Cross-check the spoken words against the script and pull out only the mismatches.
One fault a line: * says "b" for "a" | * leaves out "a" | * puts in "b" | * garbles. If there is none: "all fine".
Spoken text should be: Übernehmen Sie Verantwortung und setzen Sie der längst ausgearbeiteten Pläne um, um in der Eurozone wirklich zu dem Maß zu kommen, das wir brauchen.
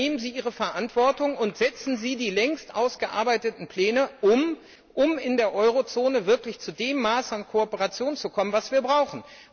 * puts in "Ihre"
* says "die" for "der"
* puts in "an Kooperation"